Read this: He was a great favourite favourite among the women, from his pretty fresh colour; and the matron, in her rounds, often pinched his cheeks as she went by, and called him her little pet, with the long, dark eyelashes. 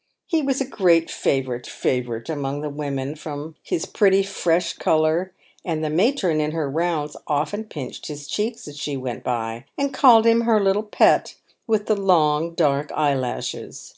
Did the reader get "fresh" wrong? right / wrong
right